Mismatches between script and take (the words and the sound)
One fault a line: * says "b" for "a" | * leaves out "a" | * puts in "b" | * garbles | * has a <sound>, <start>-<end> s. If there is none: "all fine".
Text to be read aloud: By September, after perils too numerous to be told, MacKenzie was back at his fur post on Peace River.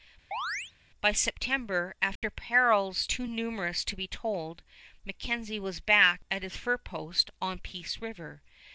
* has a chirp, 0.3-0.7 s
* has a dropout, 2.2-2.2 s